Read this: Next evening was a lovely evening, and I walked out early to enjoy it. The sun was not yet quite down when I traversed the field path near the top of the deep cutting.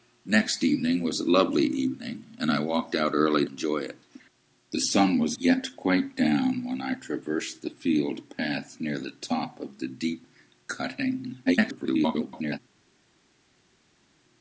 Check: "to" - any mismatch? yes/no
yes